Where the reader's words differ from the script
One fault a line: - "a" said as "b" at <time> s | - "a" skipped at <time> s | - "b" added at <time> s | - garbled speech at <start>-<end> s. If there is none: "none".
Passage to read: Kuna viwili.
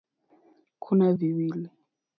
none